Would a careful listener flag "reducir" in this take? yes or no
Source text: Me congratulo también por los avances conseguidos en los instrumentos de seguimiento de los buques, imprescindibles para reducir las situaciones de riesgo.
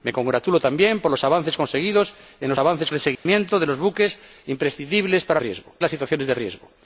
yes